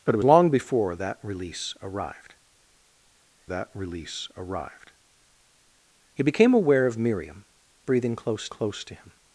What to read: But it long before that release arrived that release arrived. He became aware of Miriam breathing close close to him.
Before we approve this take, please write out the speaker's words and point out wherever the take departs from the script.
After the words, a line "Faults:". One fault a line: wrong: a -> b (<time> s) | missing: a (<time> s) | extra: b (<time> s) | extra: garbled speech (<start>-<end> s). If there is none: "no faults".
But it long before that release arrived that release arrived. He became aware of Miriam breathing close close to him.
Faults:
no faults